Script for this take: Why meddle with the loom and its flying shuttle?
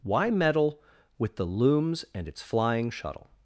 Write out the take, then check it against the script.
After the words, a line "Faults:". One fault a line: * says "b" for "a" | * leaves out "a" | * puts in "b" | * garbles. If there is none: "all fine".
Why meddle with the looms and its flying shuttle?
Faults:
* says "looms" for "loom"